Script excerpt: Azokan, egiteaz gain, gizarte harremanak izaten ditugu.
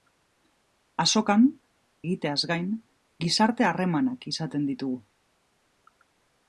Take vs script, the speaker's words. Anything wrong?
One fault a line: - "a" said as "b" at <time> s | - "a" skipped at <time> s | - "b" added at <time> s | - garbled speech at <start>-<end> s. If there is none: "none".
none